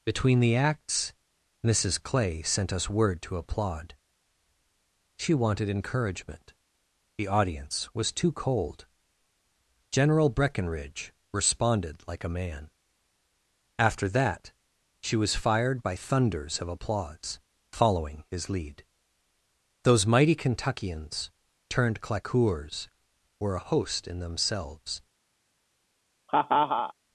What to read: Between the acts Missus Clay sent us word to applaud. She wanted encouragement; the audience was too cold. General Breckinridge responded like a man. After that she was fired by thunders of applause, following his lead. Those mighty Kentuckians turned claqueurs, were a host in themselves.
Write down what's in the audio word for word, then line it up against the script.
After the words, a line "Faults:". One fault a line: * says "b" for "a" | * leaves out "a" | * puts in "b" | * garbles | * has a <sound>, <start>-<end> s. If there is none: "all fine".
Between the acts Missus Clay sent us word to applaud. She wanted encouragement; the audience was too cold. General Breckinridge responded like a man. After that she was fired by thunders of applause, following his lead. Those mighty Kentuckians turned claqueurs, were a host in themselves.
Faults:
* has a laugh, 26.3-26.9 s